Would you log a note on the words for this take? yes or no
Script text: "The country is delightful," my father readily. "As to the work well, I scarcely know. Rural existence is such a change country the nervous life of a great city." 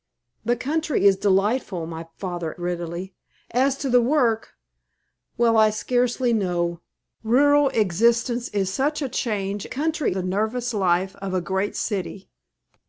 no